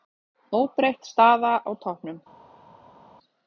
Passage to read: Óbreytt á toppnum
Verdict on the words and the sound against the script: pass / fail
fail